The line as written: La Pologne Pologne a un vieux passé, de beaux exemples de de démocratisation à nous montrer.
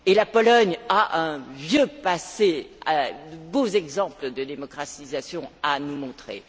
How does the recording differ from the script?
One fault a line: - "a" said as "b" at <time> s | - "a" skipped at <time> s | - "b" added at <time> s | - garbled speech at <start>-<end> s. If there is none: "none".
- "Pologne" skipped at 0.8 s
- "de" skipped at 4.4 s